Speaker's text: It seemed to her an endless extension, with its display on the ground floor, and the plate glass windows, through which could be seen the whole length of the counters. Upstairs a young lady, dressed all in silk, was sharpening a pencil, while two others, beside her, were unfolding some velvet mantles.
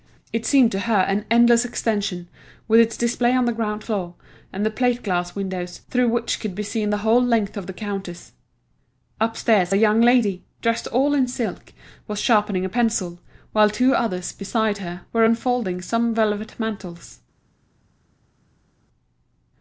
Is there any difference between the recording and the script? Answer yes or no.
no